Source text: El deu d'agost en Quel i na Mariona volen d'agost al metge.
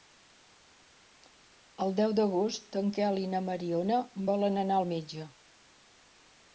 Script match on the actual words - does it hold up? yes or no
no